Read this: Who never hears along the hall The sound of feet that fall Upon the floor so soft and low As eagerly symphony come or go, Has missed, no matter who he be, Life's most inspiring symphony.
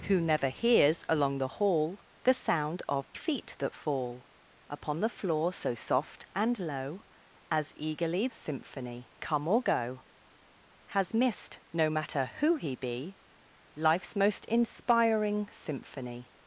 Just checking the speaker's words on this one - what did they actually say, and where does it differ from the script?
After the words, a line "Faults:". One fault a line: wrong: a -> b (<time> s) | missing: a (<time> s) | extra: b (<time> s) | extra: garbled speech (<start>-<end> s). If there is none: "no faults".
Who never hears along the hall The sound of feet that fall Upon the floor so soft and low As eagerly symphony come or go, Has missed, no matter who he be, Life's most inspiring symphony.
Faults:
no faults